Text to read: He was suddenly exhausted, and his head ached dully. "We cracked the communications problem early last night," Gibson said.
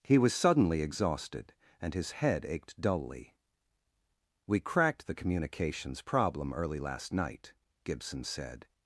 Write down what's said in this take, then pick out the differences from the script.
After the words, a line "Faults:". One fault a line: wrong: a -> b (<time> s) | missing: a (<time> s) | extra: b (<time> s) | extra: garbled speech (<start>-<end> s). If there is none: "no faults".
He was suddenly exhausted, and his head ached dully. "We cracked the communications problem early last night," Gibson said.
Faults:
no faults